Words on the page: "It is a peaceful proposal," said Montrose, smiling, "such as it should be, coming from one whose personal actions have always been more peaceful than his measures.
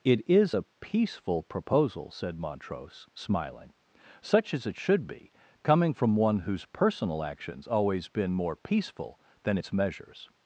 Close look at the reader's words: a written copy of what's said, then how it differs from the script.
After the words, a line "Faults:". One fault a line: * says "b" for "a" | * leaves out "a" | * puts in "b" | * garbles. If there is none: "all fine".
"It is a peaceful proposal," said Montrose, smiling, "such as it should be, coming from one whose personal actions always been more peaceful than its measures.
Faults:
* leaves out "have"
* says "its" for "his"